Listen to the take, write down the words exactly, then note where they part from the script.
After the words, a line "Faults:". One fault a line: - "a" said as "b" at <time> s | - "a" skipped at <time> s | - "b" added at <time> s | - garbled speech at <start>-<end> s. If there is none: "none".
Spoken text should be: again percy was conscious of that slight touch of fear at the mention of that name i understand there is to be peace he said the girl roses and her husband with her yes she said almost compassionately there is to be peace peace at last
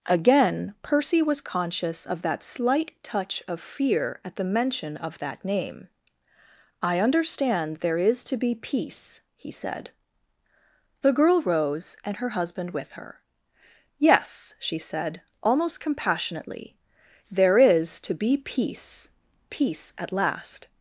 again percy was conscious of that slight touch of fear at the mention of that name i understand there is to be peace he said the girl rose and her husband with her yes she said almost compassionately there is to be peace peace at last
Faults:
- "roses" said as "rose" at 11.4 s